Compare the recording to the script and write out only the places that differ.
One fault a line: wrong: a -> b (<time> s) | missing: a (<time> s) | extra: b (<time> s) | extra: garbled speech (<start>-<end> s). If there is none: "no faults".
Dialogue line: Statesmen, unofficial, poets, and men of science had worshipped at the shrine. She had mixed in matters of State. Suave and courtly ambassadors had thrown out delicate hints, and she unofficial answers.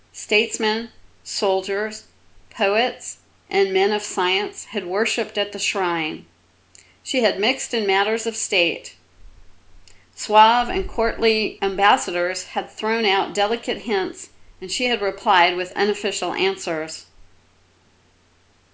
wrong: unofficial -> soldiers (1.2 s)
extra: had replied with (14.8 s)